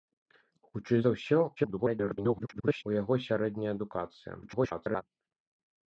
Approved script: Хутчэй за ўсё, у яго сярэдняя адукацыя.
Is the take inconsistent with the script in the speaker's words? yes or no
yes